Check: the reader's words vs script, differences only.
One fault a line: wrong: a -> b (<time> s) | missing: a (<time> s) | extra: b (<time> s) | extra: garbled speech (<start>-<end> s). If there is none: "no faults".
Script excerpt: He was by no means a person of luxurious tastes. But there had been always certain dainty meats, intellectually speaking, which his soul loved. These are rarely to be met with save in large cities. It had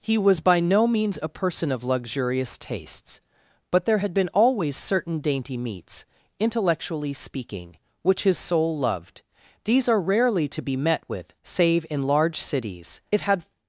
no faults